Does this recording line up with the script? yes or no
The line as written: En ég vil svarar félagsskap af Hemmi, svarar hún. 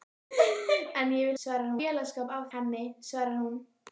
yes